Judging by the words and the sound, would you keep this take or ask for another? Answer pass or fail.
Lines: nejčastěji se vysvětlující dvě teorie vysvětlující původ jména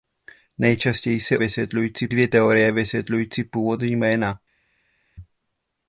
pass